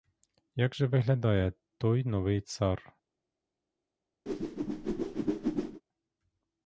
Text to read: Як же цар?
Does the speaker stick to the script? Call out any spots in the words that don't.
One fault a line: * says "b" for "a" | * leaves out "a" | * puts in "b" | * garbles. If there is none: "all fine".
* puts in "виглядає той новий"